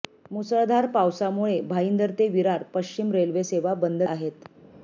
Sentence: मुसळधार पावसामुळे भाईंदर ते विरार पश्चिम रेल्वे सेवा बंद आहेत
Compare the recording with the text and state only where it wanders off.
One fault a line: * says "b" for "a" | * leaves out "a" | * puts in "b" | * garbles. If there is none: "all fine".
all fine